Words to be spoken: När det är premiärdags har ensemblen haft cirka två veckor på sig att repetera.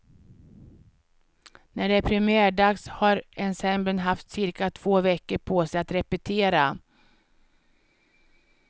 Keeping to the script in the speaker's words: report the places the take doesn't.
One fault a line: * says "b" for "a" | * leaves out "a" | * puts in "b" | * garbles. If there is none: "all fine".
all fine